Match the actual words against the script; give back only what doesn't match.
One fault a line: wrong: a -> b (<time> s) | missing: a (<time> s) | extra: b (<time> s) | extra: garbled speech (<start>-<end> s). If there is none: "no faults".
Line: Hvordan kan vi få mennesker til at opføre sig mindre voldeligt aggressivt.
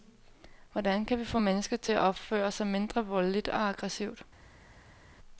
extra: og (3.5 s)